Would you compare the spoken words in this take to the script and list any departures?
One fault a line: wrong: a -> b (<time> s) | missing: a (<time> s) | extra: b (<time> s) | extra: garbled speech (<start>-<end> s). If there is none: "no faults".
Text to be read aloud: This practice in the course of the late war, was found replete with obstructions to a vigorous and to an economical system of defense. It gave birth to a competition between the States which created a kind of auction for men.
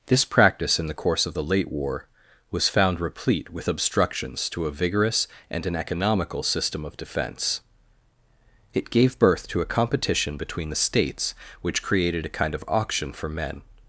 missing: to (5.7 s)